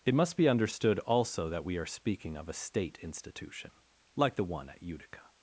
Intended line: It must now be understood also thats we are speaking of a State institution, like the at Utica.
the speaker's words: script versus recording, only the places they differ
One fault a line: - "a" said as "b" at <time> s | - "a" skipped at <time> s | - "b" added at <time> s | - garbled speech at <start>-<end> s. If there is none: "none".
- "now" skipped at 0.4 s
- "thats" said as "that" at 1.5 s
- "one" added at 4.4 s